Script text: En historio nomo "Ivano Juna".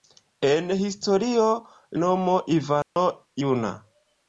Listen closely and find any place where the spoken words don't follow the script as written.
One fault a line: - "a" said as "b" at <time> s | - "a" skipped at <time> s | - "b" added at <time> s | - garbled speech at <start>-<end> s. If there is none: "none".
none